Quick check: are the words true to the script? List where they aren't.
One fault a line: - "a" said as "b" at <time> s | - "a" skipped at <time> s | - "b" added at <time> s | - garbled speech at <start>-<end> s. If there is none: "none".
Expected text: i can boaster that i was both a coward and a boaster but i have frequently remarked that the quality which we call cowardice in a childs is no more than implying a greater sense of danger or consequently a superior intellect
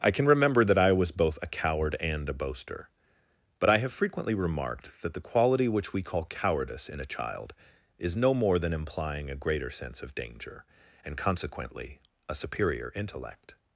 - "boaster" said as "remember" at 0.2 s
- "childs" said as "child" at 7.0 s
- "or" said as "and" at 11.1 s